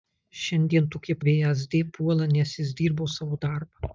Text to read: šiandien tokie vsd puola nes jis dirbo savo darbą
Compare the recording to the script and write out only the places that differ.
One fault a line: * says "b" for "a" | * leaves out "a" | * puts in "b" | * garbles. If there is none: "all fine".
all fine